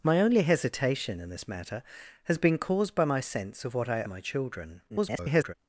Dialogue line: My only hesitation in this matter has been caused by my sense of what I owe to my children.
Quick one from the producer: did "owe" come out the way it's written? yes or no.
no